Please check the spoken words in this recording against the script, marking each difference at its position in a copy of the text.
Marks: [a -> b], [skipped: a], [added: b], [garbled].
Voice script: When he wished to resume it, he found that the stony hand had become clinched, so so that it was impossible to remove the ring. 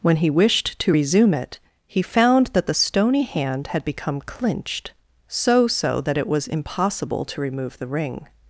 When he wished to resume it, he found that the stony hand had become clinched, so so that it was impossible to remove the ring.